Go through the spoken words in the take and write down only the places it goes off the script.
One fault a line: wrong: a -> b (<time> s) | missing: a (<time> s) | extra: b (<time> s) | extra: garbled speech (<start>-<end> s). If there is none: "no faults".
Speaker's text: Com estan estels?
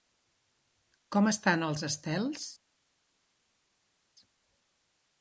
extra: els (1.7 s)